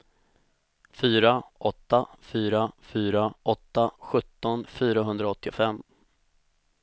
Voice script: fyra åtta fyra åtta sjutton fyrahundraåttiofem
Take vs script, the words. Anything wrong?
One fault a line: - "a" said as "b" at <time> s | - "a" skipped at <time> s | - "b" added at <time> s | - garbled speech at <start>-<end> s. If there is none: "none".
- "fyra" added at 2.8 s